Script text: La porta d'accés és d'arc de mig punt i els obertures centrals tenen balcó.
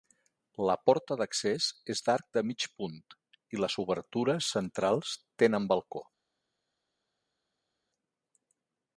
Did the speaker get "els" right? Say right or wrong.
wrong